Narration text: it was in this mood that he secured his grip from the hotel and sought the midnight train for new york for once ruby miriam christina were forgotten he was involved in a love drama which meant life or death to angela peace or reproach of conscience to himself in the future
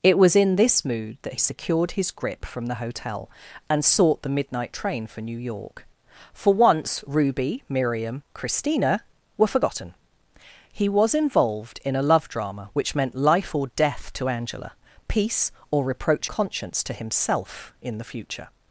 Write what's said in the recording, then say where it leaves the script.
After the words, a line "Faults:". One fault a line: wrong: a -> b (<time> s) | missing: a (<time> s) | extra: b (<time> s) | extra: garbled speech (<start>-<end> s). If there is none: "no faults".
it was in this mood that secured his grip from the hotel and sought the midnight train for new york for once ruby miriam christina were forgotten he was involved in a love drama which meant life or death to angela peace or reproach conscience to himself in the future
Faults:
missing: he (1.4 s)
missing: of (16.3 s)